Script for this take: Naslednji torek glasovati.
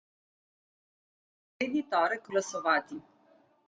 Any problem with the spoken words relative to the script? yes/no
no